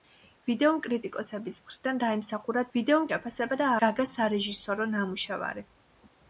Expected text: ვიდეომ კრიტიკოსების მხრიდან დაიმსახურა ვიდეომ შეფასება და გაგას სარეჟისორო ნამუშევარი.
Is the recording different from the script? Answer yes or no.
no